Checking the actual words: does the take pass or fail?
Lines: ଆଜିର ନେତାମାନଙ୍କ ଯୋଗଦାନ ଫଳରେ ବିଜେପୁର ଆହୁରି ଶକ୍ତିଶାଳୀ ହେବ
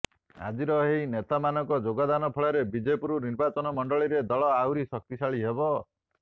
fail